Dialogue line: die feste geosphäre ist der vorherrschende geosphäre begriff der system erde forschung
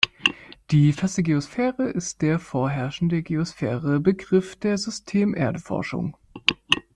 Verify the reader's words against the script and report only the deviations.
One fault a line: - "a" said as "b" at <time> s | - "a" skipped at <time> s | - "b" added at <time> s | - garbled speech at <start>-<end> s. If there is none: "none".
none